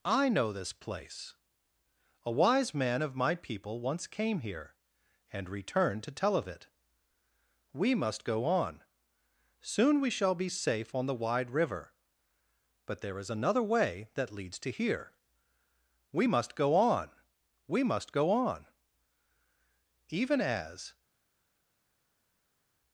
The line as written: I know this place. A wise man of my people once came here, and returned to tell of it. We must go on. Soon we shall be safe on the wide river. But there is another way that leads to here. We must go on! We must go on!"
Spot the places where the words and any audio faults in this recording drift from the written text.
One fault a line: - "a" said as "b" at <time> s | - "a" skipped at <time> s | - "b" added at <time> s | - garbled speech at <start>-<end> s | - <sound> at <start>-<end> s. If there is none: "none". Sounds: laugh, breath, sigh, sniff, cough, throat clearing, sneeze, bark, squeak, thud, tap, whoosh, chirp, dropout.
- "Even as" added at 20.1 s